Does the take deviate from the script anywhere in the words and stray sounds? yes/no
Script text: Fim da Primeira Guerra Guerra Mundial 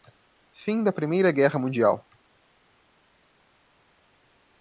yes